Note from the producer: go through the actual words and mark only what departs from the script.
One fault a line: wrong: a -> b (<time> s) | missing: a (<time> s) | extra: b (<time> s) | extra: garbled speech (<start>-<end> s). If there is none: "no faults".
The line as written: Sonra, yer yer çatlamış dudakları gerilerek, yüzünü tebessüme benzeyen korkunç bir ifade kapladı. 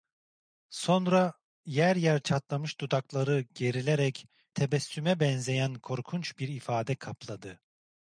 missing: yüzünü (4.2 s)